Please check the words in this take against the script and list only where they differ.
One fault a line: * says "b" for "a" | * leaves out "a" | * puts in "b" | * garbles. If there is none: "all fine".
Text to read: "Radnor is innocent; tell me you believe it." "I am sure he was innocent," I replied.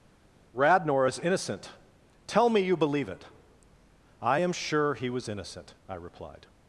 all fine